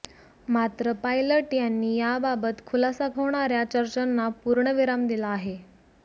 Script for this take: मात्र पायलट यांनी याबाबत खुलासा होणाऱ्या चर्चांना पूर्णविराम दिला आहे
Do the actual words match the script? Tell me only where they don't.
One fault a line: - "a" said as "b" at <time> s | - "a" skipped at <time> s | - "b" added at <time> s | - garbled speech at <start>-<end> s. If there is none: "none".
none